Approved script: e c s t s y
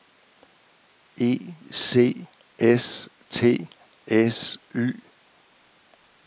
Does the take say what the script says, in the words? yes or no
yes